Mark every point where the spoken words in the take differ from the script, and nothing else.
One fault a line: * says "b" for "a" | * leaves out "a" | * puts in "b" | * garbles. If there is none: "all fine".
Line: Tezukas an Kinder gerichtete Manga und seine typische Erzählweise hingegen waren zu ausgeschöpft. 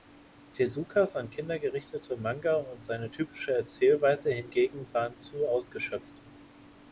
all fine